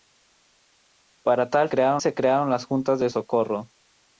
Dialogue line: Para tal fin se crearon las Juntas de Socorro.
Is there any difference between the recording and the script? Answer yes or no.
yes